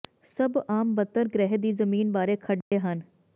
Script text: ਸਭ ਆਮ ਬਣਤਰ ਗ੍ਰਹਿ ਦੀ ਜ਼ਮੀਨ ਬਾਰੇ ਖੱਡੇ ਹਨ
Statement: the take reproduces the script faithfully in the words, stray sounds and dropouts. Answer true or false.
false